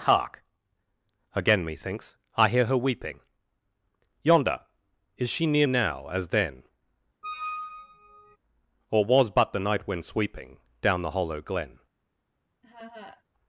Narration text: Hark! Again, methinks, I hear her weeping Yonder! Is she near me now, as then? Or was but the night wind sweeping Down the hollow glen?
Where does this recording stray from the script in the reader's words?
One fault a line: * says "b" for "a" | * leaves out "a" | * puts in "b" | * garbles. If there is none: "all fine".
* leaves out "me"